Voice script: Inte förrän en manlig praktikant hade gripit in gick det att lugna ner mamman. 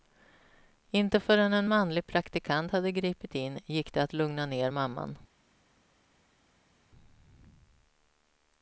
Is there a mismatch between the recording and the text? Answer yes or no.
no